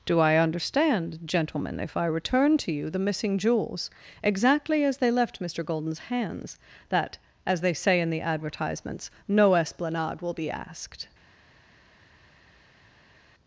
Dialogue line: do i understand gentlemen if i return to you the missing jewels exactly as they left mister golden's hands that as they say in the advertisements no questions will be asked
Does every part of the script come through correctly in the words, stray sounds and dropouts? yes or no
no